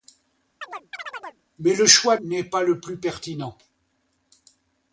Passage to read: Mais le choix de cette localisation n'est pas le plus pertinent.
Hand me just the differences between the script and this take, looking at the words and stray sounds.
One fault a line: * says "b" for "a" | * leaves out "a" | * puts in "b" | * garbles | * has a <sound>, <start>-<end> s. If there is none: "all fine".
* has a chirp, 0.6-1.4 s
* leaves out "de cette localisation"